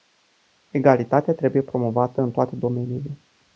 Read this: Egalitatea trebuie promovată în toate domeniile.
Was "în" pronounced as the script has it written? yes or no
yes